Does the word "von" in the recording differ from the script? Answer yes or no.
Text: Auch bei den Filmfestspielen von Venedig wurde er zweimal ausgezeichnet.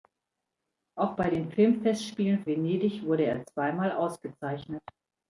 yes